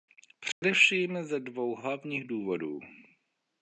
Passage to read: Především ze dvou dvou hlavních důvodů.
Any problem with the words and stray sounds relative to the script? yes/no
yes